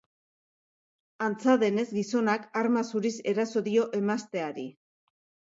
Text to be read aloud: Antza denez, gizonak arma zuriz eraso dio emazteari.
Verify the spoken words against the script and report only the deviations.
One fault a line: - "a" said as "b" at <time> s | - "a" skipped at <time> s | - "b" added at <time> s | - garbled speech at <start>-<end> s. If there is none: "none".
none